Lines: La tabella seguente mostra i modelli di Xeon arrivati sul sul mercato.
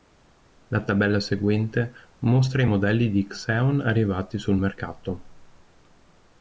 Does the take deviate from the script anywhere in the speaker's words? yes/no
yes